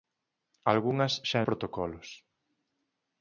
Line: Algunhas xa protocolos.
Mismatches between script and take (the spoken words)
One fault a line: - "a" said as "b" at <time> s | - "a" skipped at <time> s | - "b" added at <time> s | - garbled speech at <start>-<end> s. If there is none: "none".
none